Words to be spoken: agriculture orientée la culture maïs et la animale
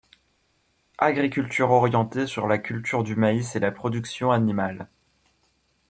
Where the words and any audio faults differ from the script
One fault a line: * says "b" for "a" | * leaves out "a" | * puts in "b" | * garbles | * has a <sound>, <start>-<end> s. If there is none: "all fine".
* puts in "sur"
* puts in "du"
* puts in "production"